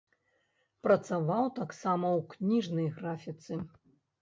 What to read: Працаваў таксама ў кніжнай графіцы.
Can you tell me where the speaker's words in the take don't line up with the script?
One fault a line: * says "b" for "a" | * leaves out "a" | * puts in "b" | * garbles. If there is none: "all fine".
all fine